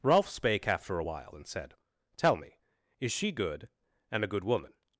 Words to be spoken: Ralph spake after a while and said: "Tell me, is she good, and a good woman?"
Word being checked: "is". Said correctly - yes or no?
yes